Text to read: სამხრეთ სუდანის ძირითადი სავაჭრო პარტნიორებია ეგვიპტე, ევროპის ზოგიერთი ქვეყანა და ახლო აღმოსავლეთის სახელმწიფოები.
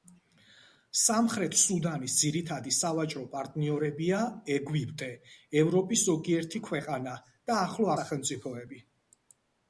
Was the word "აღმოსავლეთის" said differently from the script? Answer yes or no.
yes